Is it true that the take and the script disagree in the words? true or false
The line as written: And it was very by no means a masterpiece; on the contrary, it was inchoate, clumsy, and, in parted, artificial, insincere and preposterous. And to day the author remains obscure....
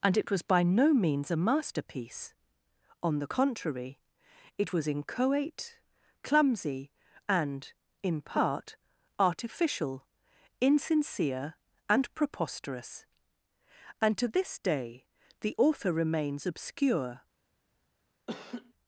true